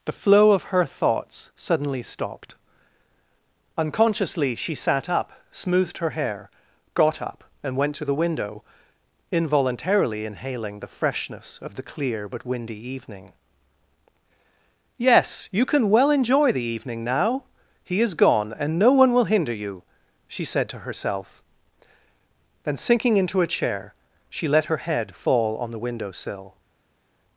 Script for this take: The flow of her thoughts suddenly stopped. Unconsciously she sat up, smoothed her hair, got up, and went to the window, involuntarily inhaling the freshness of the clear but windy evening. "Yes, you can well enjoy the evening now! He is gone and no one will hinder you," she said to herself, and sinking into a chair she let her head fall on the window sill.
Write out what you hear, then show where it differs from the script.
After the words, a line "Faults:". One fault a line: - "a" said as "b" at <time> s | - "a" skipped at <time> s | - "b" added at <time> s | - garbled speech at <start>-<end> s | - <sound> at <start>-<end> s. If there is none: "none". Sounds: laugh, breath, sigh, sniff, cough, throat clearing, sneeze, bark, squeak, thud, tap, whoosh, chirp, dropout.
The flow of her thoughts suddenly stopped. Unconsciously she sat up, smoothed her hair, got up, and went to the window, involuntarily inhaling the freshness of the clear but windy evening. "Yes, you can well enjoy the evening now! He is gone and no one will hinder you," she said to herself, then sinking into a chair she let her head fall on the window sill.
Faults:
- "and" said as "then" at 22.6 s